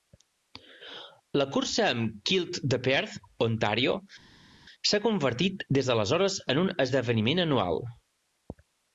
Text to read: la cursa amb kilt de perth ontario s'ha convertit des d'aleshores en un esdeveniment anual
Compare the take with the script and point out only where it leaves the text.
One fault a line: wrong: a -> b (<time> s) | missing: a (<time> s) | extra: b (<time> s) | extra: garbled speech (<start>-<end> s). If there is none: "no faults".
no faults